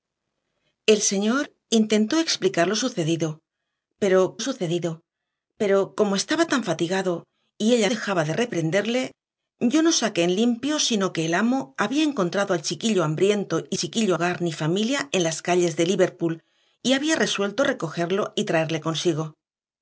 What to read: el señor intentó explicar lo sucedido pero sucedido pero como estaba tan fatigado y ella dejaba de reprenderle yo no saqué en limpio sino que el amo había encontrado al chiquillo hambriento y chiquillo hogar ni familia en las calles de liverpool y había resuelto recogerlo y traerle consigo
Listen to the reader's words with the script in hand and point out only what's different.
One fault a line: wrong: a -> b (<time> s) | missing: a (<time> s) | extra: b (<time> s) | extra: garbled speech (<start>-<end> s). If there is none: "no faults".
no faults